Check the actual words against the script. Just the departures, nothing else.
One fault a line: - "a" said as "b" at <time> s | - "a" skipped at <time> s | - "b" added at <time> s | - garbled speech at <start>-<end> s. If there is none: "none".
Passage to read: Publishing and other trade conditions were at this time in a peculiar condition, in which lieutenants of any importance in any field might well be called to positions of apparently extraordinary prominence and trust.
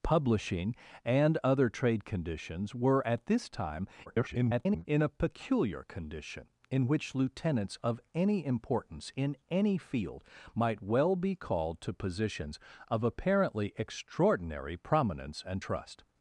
- garbled speech at 4.1-4.9 s